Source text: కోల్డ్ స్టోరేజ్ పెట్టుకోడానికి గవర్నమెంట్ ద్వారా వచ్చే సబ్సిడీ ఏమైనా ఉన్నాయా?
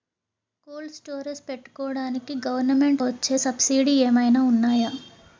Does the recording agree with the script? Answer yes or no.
no